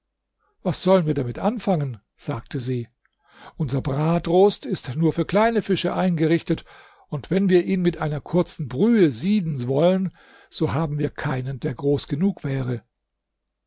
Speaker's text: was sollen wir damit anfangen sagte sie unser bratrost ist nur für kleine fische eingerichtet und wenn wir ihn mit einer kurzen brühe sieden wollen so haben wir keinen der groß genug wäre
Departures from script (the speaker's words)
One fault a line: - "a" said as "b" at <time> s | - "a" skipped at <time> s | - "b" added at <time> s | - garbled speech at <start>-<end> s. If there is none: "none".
none